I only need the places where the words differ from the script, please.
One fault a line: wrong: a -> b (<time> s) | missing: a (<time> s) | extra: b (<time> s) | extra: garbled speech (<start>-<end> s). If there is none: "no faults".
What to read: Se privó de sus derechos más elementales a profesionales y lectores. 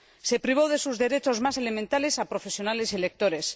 no faults